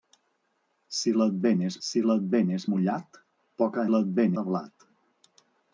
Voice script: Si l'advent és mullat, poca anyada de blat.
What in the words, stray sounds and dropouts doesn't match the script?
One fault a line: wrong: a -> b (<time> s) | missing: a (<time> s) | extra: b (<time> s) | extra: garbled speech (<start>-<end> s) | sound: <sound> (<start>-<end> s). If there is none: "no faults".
extra: si l'advent és (1.9 s)
wrong: anyada -> l'advent (3.9 s)